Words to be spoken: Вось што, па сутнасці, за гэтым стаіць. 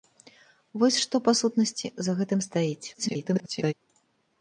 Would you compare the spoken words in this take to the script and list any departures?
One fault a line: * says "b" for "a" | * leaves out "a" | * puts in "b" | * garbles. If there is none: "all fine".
* garbles